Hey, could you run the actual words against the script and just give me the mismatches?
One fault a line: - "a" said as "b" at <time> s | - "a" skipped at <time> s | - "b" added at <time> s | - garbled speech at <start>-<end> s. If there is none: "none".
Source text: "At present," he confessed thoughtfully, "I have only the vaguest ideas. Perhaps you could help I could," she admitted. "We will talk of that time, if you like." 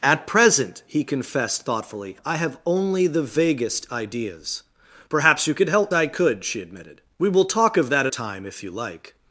none